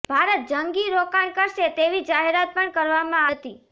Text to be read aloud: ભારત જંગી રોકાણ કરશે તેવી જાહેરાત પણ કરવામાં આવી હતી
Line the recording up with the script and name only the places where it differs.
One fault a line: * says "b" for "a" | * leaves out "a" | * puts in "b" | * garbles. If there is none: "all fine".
* leaves out "આવી"